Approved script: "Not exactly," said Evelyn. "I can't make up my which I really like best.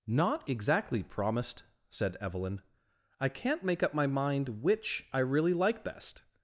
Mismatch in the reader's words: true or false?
true